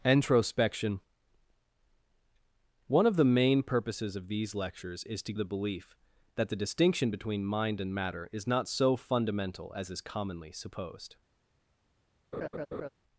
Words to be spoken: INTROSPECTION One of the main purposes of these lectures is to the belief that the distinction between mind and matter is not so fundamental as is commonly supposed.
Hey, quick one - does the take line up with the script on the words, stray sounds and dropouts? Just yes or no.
no